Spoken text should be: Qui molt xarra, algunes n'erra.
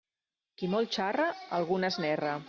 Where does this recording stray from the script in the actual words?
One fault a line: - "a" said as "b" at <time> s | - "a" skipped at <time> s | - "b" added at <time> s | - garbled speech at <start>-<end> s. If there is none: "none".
none